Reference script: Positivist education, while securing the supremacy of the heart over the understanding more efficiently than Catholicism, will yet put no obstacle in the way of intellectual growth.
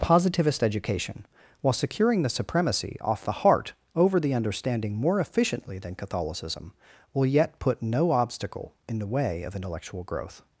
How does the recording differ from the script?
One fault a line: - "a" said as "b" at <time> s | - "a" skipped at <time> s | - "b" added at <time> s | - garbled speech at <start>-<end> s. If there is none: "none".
- "of" said as "off" at 3.0 s